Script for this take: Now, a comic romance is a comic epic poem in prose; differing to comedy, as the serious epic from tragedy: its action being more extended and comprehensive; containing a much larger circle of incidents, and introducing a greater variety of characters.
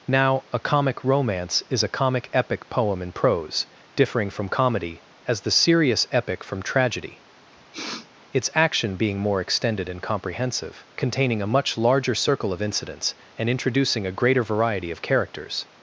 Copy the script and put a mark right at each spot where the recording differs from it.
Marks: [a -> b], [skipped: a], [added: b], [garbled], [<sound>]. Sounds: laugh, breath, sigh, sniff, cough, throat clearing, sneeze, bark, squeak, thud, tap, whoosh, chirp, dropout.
Now, a comic romance is a comic epic poem in prose; differing [to -> from] comedy, as the serious epic from tragedy: [sniff] its action being more extended and comprehensive; containing a much larger circle of incidents, and introducing a greater variety of characters.